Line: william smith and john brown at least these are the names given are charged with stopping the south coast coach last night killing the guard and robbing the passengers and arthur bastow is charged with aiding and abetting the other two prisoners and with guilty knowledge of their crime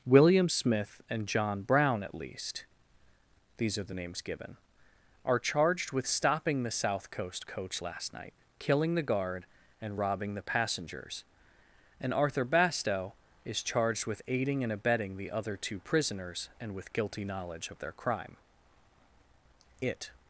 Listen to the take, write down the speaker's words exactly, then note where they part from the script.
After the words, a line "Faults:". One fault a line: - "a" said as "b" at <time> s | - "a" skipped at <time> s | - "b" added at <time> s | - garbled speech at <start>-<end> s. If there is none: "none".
william smith and john brown at least these are the names given are charged with stopping the south coast coach last night killing the guard and robbing the passengers and arthur bastow is charged with aiding and abetting the other two prisoners and with guilty knowledge of their crime it
Faults:
- "it" added at 19.8 s